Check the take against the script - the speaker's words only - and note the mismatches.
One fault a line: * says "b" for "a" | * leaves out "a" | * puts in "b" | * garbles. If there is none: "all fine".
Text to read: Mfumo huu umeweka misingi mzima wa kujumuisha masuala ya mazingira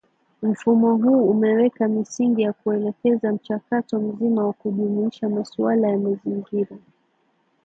* puts in "ya kuelekeza mchakato"